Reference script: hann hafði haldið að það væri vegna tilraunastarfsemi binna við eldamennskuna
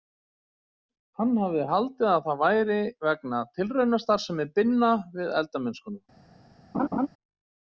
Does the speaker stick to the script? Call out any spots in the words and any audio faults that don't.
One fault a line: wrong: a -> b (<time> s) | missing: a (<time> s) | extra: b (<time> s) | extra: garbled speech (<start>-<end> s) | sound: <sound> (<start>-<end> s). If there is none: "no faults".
sound: laugh (6.7-7.1 s)